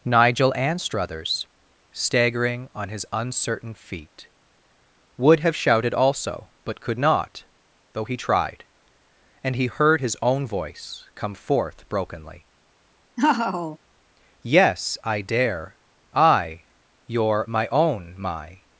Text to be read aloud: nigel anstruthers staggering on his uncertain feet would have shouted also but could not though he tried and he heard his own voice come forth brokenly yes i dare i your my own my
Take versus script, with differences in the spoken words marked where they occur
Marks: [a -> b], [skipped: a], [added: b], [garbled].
nigel anstruthers staggering on his uncertain feet would have shouted also but could not though he tried and he heard his own voice come forth brokenly yes i dare i your my own my